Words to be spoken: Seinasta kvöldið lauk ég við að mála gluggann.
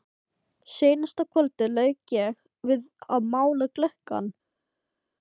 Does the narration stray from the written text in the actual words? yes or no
no